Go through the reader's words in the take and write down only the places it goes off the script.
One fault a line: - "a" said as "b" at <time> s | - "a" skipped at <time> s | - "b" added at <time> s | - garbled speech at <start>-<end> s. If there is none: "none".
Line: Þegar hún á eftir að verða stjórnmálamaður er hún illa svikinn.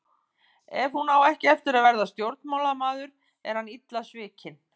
- "Þegar" said as "Ef" at 0.8 s
- "ekki" added at 1.3 s
- "hún" said as "hann" at 3.6 s